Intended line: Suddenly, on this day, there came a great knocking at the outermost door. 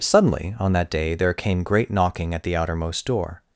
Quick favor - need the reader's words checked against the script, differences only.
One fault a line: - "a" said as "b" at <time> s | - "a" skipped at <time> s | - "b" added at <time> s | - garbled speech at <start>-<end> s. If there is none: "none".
- "this" said as "that" at 0.7 s
- "a" skipped at 1.6 s